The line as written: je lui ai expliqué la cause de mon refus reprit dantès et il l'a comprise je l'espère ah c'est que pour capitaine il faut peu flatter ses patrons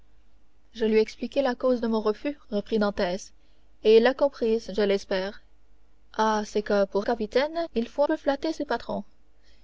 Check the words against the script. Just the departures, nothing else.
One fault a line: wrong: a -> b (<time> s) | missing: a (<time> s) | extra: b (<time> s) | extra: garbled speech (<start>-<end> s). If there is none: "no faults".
no faults